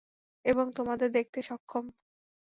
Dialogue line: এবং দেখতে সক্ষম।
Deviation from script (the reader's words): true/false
true